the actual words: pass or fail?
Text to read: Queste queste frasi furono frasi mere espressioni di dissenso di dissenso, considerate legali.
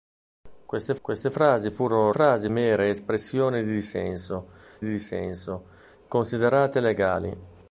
pass